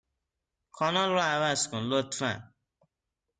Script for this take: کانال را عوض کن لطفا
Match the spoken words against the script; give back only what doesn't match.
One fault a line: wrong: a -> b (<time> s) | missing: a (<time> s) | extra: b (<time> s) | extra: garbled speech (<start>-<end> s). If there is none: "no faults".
no faults